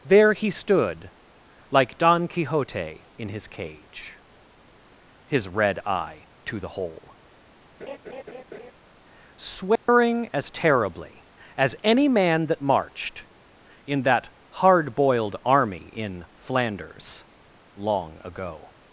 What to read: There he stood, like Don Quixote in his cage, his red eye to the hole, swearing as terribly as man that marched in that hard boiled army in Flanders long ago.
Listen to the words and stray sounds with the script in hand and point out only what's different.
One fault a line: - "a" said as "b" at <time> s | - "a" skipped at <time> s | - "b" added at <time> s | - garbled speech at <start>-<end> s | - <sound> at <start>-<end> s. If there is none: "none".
- laugh at 7.8-8.7 s
- dropout at 9.8-9.9 s
- "any" added at 11.8 s